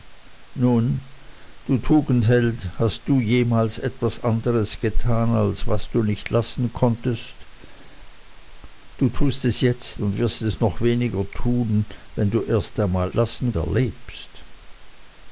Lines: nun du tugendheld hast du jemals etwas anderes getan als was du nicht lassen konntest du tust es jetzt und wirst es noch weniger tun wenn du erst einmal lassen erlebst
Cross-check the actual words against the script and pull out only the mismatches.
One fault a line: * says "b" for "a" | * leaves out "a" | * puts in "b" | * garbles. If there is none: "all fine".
all fine